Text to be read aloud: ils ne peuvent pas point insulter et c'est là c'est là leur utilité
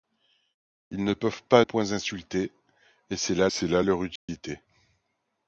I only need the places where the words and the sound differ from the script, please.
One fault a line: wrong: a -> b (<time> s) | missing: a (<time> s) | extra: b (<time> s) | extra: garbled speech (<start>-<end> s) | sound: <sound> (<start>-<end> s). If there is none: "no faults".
sound: dropout (4.2-4.3 s)